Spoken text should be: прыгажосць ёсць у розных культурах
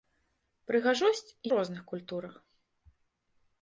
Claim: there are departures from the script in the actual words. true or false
true